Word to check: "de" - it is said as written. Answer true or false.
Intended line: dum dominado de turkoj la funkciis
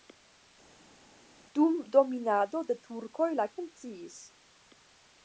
true